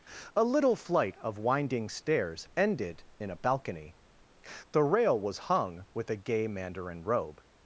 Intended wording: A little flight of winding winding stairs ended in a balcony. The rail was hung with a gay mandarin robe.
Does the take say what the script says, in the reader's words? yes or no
no